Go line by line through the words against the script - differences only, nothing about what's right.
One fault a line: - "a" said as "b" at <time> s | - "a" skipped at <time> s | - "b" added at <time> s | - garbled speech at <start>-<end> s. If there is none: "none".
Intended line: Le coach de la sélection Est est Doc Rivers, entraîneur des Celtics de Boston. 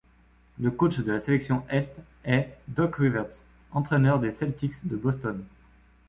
none